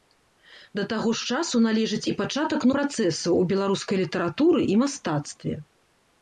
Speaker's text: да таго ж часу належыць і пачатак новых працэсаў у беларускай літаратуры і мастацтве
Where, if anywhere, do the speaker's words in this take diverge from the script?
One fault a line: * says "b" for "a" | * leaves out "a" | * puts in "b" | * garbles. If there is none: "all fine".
* leaves out "новых"